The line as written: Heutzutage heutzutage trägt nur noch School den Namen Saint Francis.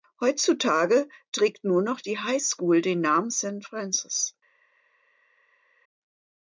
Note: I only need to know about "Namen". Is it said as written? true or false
true